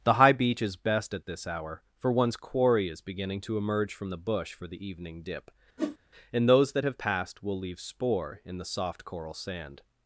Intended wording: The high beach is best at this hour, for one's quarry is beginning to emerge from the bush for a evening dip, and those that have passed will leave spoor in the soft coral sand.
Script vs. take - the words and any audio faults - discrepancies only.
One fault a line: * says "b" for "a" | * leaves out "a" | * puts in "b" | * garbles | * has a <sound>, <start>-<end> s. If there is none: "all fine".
* says "the" for "a"
* has a whoosh, 5.8-6.0 s